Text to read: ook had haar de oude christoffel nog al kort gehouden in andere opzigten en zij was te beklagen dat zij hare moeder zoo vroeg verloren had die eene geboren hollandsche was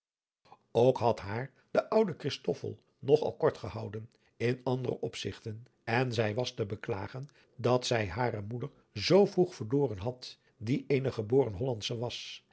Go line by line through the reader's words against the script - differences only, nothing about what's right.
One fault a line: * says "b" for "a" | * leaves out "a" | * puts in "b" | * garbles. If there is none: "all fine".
all fine